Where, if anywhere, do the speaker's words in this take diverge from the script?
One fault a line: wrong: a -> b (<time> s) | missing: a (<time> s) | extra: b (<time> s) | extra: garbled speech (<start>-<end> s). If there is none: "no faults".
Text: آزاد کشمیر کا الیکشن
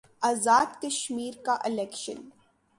no faults